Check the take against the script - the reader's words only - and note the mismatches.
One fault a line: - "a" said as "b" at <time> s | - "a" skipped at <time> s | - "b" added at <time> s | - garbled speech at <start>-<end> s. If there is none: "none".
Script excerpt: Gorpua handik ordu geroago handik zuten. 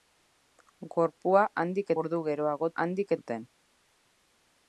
none